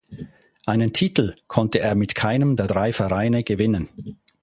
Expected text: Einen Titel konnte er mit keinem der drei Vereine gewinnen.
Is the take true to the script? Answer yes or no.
yes